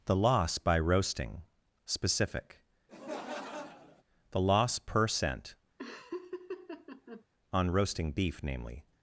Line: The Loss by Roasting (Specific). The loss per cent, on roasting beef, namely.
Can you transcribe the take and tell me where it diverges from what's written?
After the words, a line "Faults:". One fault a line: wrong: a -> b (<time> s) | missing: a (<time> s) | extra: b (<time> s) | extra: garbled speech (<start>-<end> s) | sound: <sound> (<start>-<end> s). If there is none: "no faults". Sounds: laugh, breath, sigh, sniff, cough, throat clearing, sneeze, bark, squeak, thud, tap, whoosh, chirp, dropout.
The Loss by Roasting (Specific). The loss per cent, on roasting beef, namely.
Faults:
sound: laugh (2.9-4.0 s)
sound: laugh (5.8-7.2 s)